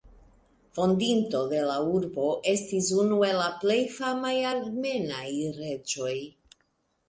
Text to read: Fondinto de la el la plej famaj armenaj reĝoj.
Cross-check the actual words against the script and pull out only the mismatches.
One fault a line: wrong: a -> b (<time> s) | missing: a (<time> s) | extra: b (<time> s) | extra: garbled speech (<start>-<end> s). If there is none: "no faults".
extra: urbo estis unu (2.0 s)